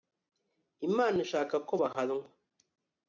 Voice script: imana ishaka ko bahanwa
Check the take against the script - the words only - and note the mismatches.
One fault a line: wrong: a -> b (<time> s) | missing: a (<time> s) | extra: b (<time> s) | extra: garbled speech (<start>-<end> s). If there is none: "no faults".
no faults